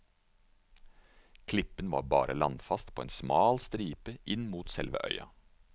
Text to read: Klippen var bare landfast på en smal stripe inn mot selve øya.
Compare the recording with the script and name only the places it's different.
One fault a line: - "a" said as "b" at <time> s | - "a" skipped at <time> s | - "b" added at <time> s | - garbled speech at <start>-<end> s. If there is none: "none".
none